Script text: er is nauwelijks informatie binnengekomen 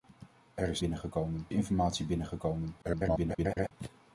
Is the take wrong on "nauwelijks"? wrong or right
wrong